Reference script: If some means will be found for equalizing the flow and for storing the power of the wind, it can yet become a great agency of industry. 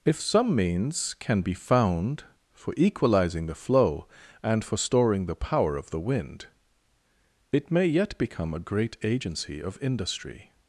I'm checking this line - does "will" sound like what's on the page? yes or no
no